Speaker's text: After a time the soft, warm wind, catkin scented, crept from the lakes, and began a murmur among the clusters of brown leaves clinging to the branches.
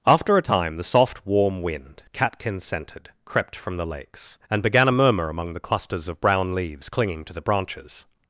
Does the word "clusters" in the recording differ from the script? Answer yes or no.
no